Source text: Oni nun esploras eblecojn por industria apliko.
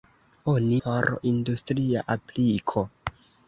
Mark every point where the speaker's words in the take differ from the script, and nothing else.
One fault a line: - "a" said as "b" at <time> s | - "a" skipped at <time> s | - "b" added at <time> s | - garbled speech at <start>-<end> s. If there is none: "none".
- "nun esploras eblecojn" skipped at 0.8 s